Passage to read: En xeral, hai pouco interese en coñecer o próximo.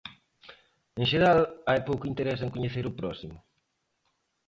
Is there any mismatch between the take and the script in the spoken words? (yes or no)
no